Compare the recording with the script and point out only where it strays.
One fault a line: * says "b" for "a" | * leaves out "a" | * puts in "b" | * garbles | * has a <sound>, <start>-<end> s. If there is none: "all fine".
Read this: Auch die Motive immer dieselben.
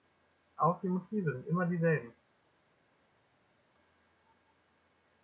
* puts in "sind"